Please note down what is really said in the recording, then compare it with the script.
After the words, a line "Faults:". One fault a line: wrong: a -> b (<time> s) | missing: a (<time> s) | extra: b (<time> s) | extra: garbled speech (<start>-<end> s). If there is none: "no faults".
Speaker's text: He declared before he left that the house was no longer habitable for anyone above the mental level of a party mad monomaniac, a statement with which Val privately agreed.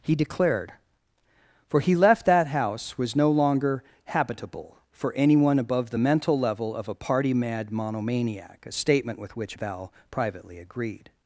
He declared for he left that house was no longer habitable for anyone above the mental level of a party mad monomaniac, a statement with which Val privately agreed.
Faults:
wrong: before -> for (1.7 s)
missing: the (2.5 s)